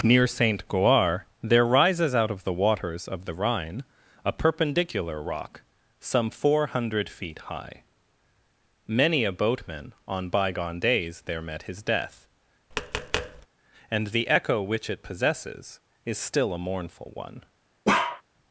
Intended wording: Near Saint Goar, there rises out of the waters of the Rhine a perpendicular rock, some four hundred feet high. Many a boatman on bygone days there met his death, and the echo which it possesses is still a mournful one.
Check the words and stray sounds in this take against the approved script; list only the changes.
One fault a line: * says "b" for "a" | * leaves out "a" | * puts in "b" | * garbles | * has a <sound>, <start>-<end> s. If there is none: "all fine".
* has a tap, 12.7-13.5 s
* has a bark, 17.8-18.2 s